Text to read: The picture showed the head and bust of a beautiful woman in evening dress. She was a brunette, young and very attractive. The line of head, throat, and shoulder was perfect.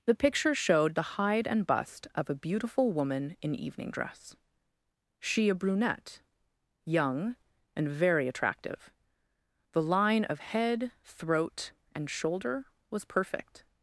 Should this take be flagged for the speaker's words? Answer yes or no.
yes